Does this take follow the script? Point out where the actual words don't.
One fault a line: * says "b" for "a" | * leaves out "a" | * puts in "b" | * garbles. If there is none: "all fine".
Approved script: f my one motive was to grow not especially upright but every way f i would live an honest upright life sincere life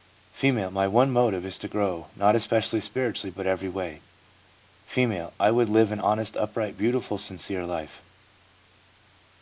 * says "is" for "was"
* says "spiritually" for "upright"
* says "beautiful" for "life"